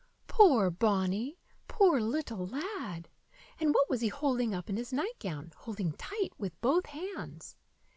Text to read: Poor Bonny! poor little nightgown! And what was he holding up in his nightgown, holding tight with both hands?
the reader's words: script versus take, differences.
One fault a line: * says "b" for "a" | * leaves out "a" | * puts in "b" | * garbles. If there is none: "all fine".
* says "lad" for "nightgown"